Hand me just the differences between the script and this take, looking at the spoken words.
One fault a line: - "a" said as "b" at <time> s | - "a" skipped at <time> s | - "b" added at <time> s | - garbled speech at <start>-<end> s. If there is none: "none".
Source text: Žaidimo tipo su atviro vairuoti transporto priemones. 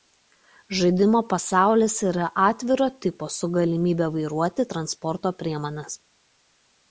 - "pasaulis yra atviro" added at 1.3 s
- "atviro" said as "galimybe" at 3.6 s